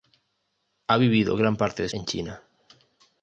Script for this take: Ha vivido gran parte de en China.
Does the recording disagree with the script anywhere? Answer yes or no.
no